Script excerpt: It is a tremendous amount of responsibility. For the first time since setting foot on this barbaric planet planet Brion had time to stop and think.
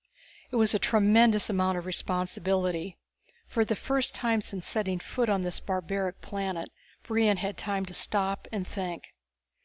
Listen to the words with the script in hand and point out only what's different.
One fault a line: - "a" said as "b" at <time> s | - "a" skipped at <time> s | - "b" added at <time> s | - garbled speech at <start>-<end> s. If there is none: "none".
- "is" said as "was" at 0.6 s
- "planet" skipped at 6.7 s